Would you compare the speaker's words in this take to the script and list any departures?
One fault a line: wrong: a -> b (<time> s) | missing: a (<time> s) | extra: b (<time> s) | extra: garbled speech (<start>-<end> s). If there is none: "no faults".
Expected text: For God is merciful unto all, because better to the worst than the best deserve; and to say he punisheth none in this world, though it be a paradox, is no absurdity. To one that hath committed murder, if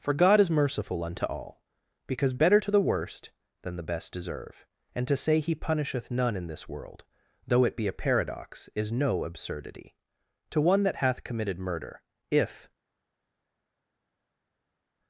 no faults